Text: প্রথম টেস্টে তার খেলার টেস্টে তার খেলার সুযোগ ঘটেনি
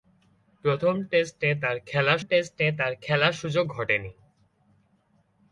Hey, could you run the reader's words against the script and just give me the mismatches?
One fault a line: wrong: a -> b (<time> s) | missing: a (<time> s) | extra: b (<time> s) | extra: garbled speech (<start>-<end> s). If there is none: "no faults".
no faults